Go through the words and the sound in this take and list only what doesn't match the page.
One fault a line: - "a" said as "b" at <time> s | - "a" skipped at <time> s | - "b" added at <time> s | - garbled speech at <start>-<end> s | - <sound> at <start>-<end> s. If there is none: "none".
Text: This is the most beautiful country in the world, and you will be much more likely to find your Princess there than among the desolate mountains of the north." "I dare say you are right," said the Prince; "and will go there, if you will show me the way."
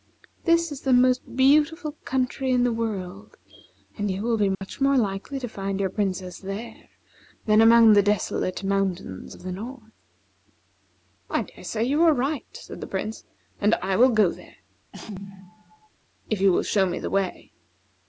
- dropout at 4.5-4.6 s
- "I" added at 13.8 s
- sneeze at 14.9-15.9 s